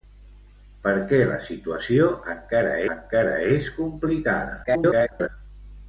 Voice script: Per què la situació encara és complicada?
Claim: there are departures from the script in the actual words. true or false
true